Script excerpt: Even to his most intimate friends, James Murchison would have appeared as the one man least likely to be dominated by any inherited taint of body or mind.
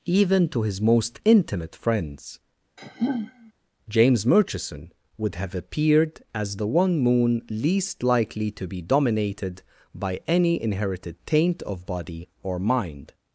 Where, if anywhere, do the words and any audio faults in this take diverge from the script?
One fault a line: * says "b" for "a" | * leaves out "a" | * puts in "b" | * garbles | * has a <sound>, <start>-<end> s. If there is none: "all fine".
* has a sigh, 2.8-3.5 s
* says "moon" for "man"